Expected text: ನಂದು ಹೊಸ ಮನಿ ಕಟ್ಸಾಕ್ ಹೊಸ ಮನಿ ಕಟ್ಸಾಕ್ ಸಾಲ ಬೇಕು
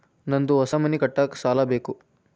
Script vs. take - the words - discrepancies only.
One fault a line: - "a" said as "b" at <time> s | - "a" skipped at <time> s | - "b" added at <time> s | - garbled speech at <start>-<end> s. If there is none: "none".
- "ಹೊಸ ಮನಿ ಕಟ್ಸಾಕ್" skipped at 1.4 s